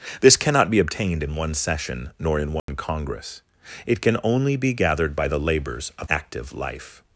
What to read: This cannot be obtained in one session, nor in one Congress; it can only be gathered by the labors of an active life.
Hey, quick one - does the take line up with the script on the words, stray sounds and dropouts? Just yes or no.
no